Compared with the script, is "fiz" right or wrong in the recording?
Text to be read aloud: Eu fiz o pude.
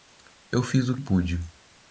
right